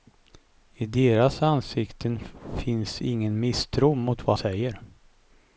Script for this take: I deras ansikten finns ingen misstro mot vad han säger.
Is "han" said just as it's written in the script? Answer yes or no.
no